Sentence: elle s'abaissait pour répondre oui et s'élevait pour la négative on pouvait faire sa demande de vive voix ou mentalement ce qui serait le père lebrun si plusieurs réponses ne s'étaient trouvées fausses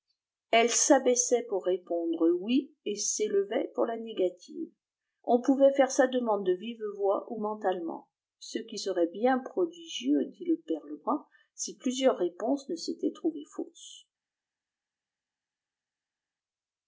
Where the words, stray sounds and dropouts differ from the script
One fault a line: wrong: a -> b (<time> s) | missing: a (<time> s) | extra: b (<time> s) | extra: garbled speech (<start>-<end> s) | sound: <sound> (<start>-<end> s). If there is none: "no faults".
extra: bien prodigieux dit (9.1 s)